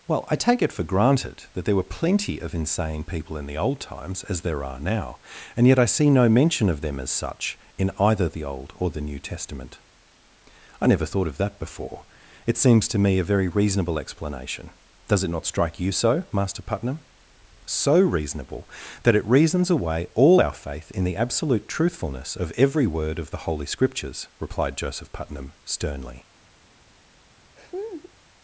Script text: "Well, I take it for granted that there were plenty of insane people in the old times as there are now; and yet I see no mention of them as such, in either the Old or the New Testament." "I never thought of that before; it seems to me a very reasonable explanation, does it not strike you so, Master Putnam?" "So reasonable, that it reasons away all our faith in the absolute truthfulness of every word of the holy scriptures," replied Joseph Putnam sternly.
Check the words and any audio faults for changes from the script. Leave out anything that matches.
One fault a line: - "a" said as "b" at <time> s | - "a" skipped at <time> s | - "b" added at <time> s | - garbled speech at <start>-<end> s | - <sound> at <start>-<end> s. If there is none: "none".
- laugh at 27.6-28.1 s